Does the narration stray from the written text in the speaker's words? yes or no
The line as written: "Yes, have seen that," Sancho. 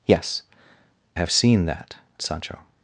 no